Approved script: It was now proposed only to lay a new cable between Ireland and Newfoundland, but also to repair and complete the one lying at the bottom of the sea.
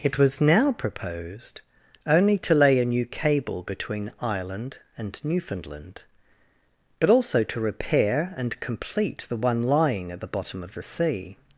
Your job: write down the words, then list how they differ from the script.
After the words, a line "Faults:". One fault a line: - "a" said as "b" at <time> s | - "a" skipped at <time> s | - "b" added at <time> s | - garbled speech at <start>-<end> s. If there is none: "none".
It was now proposed only to lay a new cable between Ireland and Newfoundland, but also to repair and complete the one lying at the bottom of the sea.
Faults:
none